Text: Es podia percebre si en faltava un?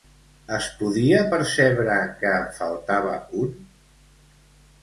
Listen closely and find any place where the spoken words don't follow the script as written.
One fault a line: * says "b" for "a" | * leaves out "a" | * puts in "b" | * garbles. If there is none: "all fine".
* says "que" for "si"